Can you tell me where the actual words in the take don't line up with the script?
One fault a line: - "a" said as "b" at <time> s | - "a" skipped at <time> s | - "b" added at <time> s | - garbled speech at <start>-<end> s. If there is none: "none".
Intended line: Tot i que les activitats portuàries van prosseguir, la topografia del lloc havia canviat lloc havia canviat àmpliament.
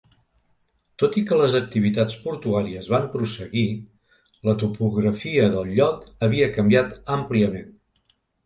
- "lloc havia canviat" skipped at 7.0 s